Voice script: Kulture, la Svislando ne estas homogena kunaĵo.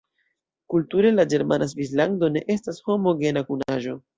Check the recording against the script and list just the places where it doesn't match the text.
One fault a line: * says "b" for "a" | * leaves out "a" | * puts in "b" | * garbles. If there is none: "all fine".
* puts in "ĝermana"